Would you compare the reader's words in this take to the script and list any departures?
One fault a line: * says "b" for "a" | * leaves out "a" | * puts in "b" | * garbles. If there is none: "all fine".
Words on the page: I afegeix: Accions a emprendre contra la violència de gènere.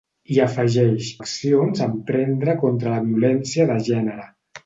all fine